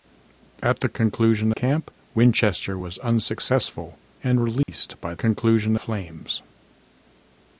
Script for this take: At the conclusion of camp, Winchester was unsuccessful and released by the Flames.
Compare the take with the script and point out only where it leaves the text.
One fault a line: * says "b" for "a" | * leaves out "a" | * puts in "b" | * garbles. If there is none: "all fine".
* leaves out "of"
* says "conclusion" for "the"